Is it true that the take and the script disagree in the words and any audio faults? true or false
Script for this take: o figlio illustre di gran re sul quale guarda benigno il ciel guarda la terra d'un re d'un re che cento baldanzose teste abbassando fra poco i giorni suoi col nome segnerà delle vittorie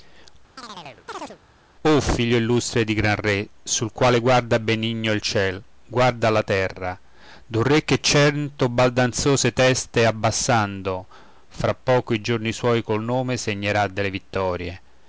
true